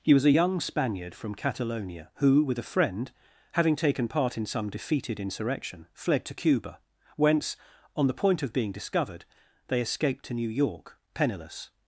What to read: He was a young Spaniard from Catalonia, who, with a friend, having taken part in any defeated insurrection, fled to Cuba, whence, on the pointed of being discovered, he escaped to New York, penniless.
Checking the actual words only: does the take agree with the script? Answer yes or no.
no